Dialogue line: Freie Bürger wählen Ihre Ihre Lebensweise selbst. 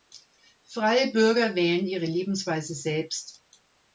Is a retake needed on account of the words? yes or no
yes